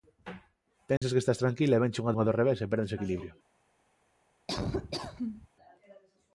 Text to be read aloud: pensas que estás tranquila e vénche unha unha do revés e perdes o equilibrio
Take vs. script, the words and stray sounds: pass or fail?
fail